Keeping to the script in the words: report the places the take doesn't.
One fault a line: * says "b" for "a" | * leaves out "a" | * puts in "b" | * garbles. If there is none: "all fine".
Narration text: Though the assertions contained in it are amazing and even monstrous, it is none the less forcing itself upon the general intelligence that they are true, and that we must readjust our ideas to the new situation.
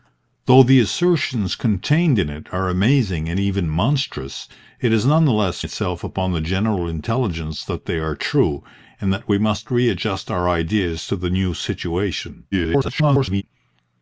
* leaves out "forcing"
* garbles